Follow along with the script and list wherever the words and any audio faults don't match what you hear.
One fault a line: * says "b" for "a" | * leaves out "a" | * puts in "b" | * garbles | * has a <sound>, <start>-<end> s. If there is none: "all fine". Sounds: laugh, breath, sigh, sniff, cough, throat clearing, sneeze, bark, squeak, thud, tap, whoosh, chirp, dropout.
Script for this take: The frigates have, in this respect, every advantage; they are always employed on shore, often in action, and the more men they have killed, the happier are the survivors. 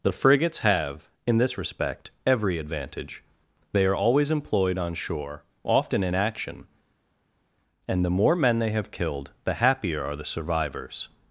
all fine